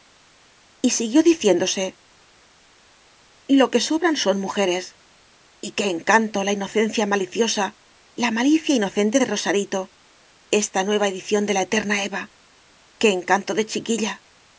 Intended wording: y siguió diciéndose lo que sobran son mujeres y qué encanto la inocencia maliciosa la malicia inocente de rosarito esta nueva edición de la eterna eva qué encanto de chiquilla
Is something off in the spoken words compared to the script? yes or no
no